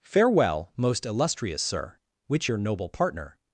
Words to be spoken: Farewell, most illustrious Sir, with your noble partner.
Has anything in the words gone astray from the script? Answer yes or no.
yes